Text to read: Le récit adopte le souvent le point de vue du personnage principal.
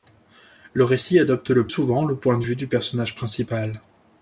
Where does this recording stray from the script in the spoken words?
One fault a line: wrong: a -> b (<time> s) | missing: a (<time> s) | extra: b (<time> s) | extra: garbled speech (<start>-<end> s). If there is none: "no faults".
no faults